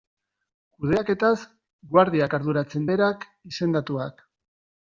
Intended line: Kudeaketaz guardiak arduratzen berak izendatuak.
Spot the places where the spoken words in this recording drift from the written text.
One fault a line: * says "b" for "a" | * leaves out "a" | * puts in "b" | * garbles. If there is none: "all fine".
all fine